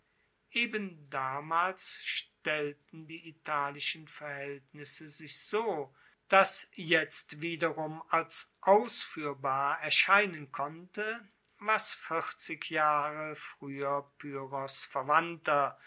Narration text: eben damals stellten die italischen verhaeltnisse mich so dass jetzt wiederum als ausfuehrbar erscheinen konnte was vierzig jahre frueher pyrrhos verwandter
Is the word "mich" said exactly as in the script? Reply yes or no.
no